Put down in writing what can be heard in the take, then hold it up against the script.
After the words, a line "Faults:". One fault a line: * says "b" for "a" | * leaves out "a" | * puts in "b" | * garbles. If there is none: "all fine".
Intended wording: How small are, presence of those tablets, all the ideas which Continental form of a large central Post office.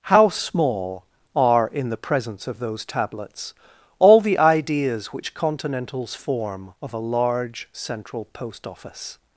How small are, in the presence of those tablets, all the ideas which Continentals form of a large central Post office.
Faults:
* puts in "in the"
* says "Continentals" for "Continental"